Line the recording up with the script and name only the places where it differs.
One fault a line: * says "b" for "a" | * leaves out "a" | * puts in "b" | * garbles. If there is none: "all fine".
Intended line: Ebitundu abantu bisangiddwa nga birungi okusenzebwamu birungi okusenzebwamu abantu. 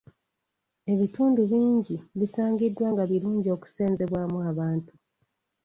* says "bingi" for "abantu"
* leaves out "birungi okusenzebwamu"